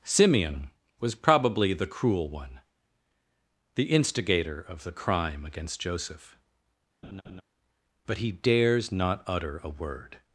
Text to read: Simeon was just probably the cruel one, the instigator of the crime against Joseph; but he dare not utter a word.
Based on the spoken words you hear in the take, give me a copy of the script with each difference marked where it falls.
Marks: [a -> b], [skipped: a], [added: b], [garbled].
Simeon was [skipped: just] probably the cruel one, the instigator of the crime against Joseph; but he [dare -> dares] not utter a word.